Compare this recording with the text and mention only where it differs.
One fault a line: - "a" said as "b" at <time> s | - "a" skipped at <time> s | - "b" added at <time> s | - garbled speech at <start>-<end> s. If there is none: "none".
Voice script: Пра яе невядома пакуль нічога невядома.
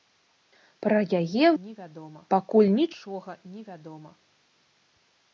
none